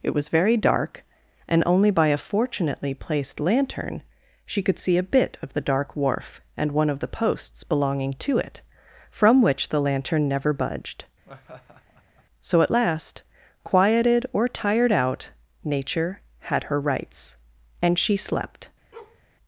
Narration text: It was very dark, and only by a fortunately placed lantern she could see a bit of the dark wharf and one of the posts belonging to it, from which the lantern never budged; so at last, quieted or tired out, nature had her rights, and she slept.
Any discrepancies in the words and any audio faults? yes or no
yes